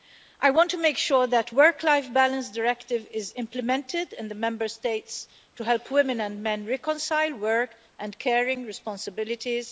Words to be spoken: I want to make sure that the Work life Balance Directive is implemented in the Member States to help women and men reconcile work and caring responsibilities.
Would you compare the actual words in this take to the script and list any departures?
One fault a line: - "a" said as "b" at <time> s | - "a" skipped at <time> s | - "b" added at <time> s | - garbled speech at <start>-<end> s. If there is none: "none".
none